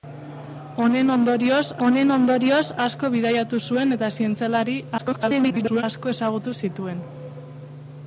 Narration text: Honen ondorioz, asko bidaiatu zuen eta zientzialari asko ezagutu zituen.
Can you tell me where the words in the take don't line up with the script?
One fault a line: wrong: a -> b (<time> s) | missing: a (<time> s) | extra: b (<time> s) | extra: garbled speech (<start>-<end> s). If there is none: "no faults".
extra: honen ondorioz (1.9 s)
extra: garbled speech (5.0-5.8 s)